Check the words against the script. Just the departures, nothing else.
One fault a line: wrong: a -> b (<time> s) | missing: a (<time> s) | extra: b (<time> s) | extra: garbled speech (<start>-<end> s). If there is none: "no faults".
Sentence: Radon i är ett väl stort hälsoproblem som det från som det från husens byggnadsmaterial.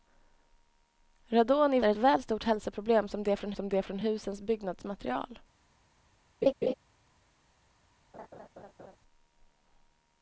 no faults